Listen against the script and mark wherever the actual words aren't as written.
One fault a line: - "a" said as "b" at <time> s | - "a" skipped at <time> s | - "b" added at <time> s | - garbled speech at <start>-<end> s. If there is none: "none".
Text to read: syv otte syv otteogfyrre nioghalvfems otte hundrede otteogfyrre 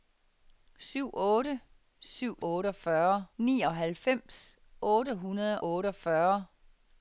none